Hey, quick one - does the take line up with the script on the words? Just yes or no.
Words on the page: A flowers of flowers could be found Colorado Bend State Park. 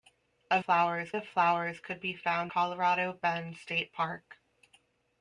yes